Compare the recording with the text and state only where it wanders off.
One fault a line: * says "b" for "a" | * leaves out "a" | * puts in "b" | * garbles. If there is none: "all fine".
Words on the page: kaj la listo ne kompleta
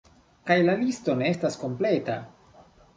* puts in "estas"